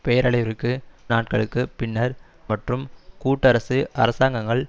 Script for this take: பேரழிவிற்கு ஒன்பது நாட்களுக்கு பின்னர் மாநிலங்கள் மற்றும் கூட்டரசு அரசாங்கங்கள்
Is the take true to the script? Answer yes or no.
no